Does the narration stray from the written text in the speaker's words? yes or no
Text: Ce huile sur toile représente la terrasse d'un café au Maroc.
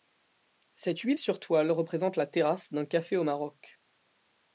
yes